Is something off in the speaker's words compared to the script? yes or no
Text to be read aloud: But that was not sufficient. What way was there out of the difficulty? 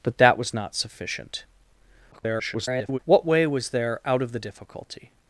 yes